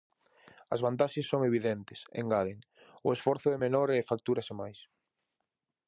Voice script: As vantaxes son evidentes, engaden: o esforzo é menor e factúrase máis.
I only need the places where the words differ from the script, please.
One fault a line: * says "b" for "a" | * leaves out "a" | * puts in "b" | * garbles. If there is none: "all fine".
all fine